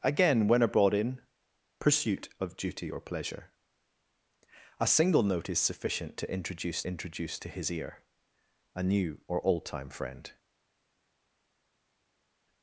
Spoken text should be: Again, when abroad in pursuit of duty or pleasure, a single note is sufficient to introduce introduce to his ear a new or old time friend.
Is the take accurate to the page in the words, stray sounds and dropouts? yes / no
yes